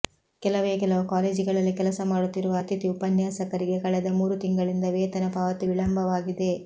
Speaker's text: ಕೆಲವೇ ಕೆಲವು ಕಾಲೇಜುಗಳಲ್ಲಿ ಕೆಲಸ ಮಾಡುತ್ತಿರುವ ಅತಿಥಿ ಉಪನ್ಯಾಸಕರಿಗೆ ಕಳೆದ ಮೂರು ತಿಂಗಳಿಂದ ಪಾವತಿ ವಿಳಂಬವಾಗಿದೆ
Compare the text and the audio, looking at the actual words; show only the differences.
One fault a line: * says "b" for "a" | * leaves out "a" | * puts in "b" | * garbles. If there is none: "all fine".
* puts in "ವೇತನ"